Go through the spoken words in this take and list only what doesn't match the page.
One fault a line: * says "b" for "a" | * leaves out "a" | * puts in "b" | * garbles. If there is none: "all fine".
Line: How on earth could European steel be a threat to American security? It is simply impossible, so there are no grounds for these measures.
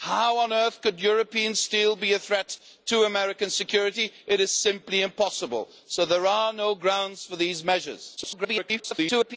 * garbles